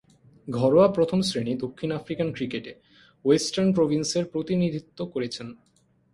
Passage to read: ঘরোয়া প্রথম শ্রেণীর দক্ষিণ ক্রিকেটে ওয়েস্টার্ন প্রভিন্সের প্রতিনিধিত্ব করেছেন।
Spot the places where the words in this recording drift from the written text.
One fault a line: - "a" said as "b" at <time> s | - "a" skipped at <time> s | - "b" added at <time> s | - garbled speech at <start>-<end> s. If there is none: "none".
- "আফ্রিকান" added at 1.9 s